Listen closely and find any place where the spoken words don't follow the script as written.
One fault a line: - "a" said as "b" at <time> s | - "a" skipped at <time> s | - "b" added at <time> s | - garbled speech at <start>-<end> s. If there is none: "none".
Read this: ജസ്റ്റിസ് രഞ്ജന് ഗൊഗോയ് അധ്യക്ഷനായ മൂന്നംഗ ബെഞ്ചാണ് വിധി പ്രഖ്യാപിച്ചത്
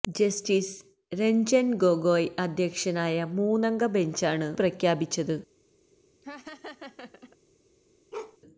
- "വിധി" skipped at 4.5 s